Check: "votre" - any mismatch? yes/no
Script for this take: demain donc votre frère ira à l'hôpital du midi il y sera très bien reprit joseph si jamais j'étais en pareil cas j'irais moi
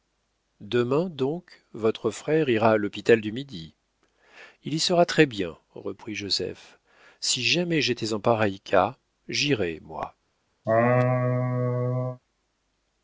no